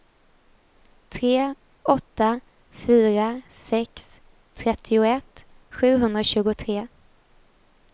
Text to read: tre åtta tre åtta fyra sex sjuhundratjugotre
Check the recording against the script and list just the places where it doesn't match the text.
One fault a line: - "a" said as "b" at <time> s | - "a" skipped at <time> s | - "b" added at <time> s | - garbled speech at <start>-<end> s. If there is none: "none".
- "tre åtta" skipped at 2.4 s
- "trettioett" added at 4.5 s